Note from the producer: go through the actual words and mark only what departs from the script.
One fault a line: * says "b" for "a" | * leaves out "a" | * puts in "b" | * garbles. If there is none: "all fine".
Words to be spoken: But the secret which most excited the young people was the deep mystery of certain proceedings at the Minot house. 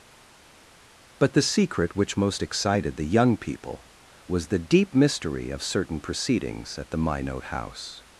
all fine